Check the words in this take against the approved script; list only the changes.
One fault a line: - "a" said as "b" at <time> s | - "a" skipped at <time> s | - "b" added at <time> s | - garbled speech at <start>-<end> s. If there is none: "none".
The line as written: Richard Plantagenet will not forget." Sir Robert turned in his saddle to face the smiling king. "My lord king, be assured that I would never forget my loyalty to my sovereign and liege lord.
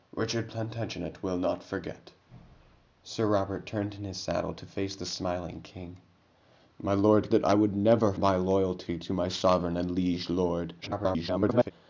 - "king be assured" skipped at 7.3 s
- "forget" skipped at 8.1 s
- garbled speech at 10.8-11.7 s